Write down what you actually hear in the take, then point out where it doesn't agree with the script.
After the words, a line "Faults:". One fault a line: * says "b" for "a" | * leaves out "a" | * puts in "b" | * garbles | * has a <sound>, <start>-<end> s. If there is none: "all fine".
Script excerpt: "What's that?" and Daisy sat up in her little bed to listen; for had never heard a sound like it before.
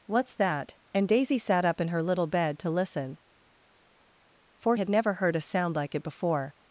"What's that?" and Daisy sat up in her little bed to listen; for had never heard a sound like it before.
Faults:
all fine